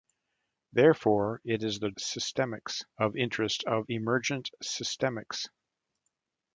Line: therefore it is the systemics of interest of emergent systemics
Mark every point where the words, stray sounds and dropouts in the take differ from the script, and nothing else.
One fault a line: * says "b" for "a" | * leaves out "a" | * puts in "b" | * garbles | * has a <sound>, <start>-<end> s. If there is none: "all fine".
all fine